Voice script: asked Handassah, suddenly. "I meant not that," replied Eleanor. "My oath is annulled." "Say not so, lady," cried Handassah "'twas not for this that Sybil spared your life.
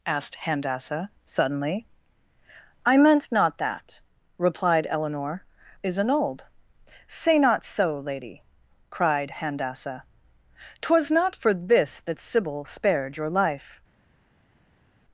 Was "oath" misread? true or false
true